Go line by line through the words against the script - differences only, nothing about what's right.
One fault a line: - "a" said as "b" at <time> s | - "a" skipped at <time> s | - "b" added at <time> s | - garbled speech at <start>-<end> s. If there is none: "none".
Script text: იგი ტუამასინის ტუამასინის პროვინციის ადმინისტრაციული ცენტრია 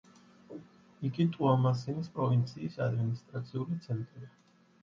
- "ტუამასინის" skipped at 2.1 s